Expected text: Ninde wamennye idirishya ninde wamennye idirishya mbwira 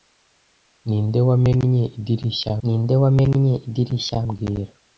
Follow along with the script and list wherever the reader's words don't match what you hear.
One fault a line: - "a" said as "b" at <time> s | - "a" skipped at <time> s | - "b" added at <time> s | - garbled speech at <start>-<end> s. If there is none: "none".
none